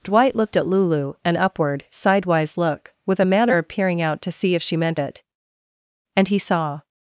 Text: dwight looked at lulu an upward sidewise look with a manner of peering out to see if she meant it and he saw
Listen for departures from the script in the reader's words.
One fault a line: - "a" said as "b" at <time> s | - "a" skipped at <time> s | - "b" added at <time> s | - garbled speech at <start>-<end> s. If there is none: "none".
none